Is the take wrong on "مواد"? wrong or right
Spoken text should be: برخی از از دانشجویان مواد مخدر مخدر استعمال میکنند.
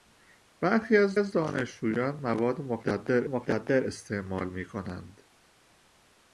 right